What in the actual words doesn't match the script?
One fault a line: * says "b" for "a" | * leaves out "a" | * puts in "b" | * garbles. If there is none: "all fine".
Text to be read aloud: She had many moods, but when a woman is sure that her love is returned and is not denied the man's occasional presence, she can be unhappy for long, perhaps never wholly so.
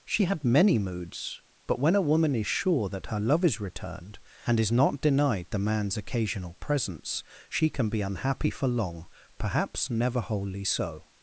all fine